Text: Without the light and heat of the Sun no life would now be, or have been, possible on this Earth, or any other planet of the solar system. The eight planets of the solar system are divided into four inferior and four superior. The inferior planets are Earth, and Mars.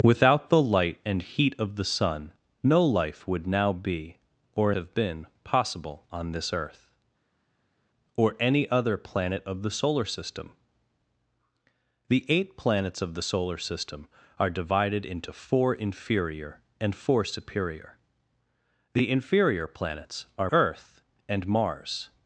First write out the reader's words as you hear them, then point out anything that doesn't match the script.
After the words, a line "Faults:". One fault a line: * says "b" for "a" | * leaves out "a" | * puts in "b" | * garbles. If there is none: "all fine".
Without the light and heat of the Sun no life would now be, or have been, possible on this Earth, or any other planet of the solar system. The eight planets of the solar system are divided into four inferior and four superior. The inferior planets are Earth, and Mars.
Faults:
all fine